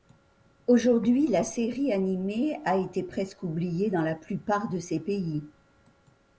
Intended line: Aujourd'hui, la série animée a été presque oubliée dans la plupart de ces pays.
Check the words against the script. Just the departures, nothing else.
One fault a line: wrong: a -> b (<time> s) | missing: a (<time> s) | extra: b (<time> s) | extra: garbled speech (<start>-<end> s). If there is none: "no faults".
no faults